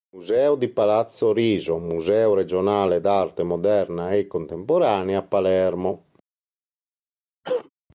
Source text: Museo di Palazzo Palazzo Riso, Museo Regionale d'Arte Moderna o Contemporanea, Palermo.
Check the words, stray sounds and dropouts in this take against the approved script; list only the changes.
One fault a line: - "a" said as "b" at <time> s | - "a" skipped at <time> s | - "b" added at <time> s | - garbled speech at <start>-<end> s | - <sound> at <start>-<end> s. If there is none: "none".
- "Palazzo" skipped at 1.3 s
- "o" said as "e" at 4.1 s
- cough at 7.4-7.7 s